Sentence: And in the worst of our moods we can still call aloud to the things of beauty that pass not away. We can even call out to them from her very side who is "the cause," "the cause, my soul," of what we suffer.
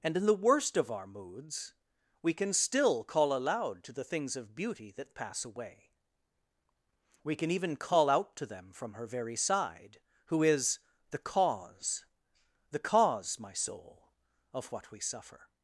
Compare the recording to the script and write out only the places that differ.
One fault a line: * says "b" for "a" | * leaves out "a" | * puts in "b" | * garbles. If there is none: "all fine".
* leaves out "not"